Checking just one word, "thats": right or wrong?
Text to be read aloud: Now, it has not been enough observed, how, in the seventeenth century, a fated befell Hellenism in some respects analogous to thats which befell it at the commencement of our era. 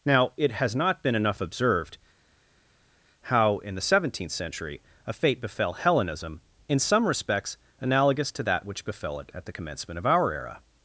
wrong